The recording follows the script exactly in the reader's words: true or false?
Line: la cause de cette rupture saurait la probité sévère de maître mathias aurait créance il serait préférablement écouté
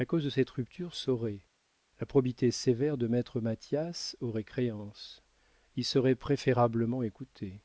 true